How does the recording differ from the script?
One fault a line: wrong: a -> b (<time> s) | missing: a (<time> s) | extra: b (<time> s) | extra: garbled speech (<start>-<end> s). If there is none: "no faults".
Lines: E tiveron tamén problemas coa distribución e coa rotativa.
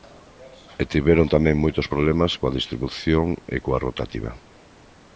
extra: moitos (1.6 s)